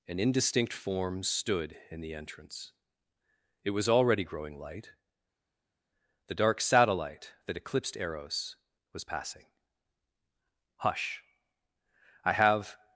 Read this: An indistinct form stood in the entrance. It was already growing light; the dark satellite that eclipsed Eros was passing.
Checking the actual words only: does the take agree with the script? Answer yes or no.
no